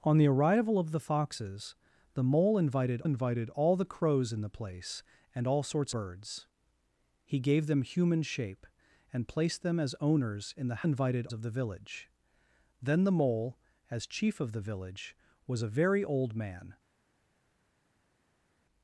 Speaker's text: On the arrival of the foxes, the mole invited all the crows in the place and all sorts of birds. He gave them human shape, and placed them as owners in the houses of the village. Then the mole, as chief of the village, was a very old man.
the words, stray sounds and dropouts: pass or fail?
fail